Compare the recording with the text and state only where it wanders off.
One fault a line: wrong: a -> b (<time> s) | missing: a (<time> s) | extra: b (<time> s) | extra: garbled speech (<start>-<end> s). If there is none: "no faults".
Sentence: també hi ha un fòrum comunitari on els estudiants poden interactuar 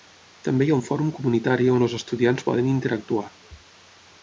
no faults